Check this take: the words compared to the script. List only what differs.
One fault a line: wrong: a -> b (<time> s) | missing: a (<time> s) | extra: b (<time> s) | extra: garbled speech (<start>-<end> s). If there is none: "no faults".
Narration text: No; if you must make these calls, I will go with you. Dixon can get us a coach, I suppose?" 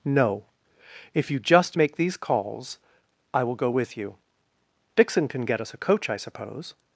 wrong: must -> just (1.4 s)